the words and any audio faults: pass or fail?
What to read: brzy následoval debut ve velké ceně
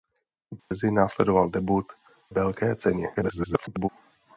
fail